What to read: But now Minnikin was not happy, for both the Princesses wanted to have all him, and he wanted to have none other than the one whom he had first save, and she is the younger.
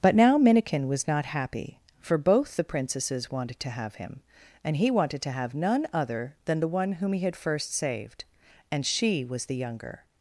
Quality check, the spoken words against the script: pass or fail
fail